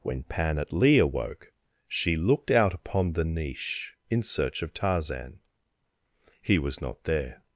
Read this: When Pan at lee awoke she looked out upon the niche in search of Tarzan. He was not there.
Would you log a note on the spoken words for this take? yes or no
no